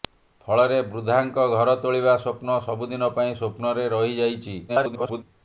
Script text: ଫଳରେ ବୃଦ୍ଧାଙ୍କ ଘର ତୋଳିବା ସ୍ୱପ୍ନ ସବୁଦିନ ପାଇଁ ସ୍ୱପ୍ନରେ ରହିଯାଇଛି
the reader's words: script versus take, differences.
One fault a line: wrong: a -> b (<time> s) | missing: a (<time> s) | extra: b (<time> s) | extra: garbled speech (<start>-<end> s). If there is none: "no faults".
extra: garbled speech (4.7-5.2 s)